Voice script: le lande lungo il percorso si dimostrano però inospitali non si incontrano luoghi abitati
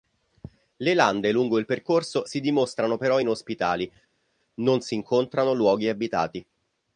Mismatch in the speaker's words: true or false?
false